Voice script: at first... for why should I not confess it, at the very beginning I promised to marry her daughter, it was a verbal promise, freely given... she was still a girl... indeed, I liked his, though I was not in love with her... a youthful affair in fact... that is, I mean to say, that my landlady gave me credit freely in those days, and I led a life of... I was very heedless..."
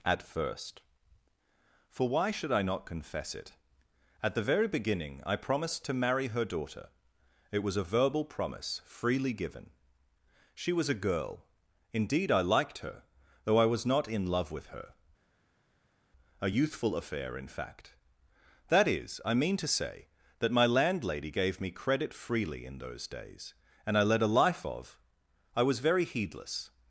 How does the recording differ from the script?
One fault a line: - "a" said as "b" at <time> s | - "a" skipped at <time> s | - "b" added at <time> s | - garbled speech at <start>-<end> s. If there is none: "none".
- "still" skipped at 10.9 s
- "his" said as "her" at 12.8 s